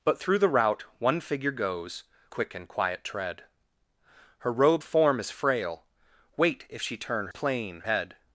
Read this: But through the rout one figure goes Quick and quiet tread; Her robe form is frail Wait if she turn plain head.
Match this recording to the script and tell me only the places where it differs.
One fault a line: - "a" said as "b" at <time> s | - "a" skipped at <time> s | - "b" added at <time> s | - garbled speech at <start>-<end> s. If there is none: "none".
none